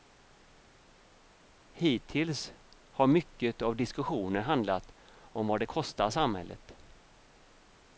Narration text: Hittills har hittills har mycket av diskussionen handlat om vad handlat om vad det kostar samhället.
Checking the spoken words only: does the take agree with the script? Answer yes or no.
no